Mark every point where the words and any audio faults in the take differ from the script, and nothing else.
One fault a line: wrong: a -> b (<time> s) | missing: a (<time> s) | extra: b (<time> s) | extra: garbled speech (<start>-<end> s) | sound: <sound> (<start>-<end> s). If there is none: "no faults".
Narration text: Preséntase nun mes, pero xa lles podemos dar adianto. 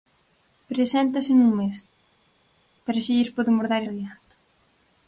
no faults